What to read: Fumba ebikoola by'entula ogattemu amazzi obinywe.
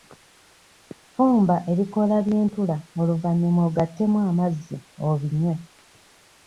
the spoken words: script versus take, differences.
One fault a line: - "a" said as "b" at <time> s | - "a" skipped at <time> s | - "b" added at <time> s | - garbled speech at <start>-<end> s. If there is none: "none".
- "oluvannyuma" added at 3.0 s